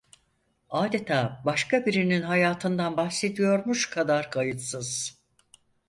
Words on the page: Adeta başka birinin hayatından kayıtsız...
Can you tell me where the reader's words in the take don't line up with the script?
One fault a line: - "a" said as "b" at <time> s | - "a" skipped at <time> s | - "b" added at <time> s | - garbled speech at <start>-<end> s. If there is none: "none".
- "bahsediyormuş kadar" added at 3.0 s